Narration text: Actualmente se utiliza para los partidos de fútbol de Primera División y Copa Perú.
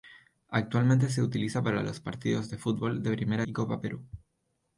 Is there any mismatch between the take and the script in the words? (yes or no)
yes